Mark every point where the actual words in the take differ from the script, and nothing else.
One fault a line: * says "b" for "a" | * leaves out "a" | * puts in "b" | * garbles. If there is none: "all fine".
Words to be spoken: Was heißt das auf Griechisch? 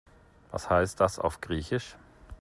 all fine